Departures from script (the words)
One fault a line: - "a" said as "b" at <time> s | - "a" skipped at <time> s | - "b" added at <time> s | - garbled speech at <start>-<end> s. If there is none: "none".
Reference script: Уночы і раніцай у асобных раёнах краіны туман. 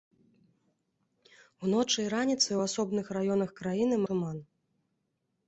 none